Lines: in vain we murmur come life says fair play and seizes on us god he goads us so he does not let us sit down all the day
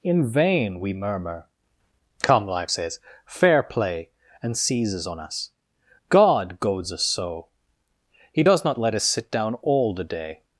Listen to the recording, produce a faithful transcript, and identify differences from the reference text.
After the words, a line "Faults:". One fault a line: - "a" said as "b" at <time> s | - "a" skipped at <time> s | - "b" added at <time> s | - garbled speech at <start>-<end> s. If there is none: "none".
in vain we murmur come life says fair play and seizes on us god goads us so he does not let us sit down all the day
Faults:
- "he" skipped at 6.6 s